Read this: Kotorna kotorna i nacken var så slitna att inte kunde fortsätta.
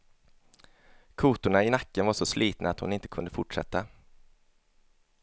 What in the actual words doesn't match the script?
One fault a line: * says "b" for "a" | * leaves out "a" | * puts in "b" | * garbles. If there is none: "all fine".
* leaves out "kotorna"
* puts in "hon"